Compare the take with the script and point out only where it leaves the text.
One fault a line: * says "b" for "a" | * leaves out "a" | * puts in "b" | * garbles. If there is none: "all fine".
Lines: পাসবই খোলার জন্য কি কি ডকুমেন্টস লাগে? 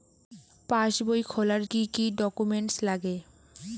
* leaves out "জন্য"